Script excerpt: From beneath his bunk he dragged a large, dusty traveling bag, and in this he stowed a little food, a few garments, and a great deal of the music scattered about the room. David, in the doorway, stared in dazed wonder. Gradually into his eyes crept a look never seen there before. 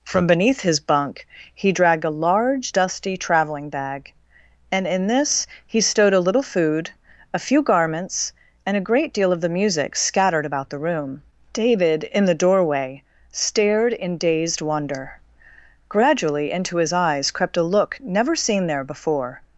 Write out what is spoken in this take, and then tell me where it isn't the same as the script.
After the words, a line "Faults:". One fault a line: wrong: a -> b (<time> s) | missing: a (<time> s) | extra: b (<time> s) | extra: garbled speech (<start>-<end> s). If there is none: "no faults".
From beneath his bunk he dragged a large, dusty traveling bag, and in this he stowed a little food, a few garments, and a great deal of the music scattered about the room. David, in the doorway, stared in dazed wonder. Gradually into his eyes crept a look never seen there before.
Faults:
no faults